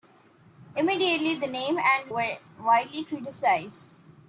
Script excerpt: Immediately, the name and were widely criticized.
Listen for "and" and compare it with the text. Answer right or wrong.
right